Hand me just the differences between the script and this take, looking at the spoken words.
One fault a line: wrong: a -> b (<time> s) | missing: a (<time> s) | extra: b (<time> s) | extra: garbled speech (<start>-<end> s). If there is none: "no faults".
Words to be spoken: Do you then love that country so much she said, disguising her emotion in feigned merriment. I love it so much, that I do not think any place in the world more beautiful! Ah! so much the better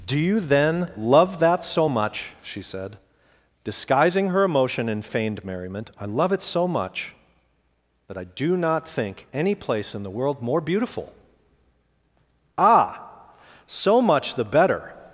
missing: country (1.6 s)